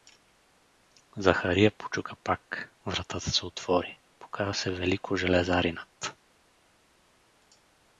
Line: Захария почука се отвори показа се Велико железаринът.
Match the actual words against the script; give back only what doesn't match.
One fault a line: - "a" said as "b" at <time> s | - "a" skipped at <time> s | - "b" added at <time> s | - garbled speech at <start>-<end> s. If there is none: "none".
- "пак вратата" added at 2.2 s